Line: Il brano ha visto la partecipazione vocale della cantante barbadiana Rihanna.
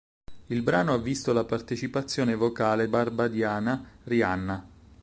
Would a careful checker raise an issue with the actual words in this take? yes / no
yes